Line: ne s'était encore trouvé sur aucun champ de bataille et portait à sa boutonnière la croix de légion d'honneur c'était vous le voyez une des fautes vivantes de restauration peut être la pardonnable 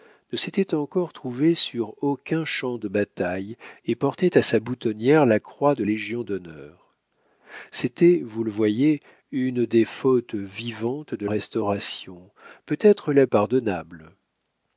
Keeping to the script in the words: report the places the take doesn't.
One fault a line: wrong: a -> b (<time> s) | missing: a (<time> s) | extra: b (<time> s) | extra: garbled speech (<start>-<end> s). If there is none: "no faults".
no faults